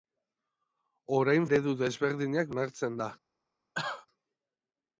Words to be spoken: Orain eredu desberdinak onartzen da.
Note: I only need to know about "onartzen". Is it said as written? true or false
true